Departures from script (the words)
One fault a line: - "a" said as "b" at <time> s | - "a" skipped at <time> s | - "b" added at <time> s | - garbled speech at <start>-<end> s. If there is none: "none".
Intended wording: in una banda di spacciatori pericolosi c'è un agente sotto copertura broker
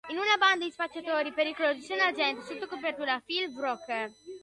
- "phil" added at 3.2 s